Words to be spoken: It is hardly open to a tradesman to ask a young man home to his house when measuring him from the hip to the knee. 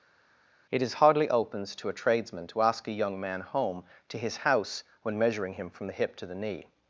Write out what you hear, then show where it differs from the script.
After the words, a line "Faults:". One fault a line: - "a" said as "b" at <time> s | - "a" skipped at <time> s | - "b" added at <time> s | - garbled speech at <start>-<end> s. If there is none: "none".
It is hardly opens to a tradesman to ask a young man home to his house when measuring him from the hip to the knee.
Faults:
- "open" said as "opens" at 1.3 s